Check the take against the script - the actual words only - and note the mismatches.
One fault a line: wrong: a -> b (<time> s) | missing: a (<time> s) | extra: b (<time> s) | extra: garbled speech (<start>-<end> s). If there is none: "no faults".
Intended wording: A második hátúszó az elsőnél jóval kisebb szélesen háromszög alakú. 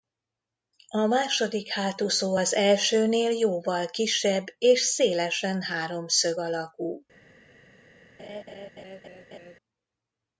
extra: és (4.6 s)